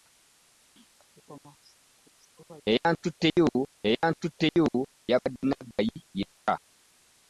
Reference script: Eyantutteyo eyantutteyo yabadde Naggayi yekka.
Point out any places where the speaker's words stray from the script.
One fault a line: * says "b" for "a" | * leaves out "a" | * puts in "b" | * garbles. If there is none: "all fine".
all fine